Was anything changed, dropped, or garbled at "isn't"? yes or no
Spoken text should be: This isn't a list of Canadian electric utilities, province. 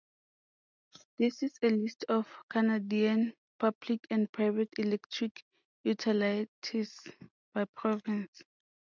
yes